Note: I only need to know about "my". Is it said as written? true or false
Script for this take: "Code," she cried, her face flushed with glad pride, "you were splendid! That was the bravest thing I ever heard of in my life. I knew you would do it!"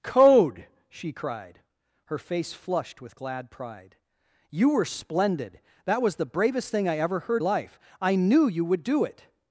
false